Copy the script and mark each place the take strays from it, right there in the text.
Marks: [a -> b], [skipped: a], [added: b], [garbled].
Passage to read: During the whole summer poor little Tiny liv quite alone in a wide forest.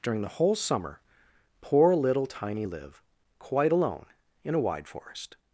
During the whole summer poor little Tiny liv quite alone in a wide forest.